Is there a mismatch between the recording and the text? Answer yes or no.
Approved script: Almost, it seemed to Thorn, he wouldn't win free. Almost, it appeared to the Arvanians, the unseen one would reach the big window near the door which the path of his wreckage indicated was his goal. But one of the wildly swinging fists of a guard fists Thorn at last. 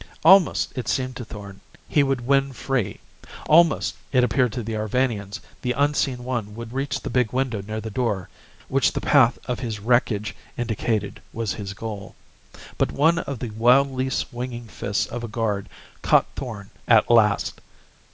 yes